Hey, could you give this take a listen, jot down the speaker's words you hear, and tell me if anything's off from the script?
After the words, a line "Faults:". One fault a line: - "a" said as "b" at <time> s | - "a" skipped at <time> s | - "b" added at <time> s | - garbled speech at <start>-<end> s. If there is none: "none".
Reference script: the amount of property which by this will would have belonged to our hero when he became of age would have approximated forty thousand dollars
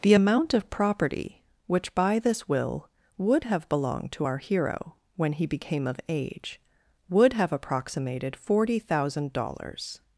the amount of property which by this will would have belonged to our hero when he became of age would have approximated forty thousand dollars
Faults:
none